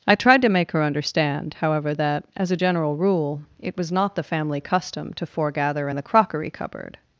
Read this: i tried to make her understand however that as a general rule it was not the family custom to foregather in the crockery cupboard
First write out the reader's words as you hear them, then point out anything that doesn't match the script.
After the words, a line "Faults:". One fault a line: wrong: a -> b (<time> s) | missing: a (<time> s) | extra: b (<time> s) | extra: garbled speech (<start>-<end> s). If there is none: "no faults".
i tried to make her understand however that as a general rule it was not the family custom to foregather in the crockery cupboard
Faults:
no faults